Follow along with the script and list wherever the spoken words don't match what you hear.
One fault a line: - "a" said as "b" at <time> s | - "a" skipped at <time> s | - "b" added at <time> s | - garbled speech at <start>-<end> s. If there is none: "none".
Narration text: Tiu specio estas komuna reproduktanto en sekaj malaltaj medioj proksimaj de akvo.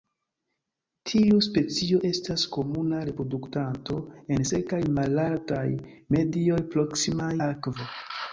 - "de" skipped at 7.3 s